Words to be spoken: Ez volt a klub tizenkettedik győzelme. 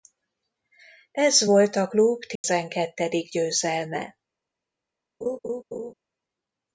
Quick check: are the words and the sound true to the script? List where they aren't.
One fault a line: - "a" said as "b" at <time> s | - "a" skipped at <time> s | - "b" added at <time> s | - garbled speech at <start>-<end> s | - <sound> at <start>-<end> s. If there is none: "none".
- dropout at 2.4-2.4 s
- laugh at 5.2-5.9 s